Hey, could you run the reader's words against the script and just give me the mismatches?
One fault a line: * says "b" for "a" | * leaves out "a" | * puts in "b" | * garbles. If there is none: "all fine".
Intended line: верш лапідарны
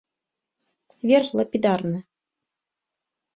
all fine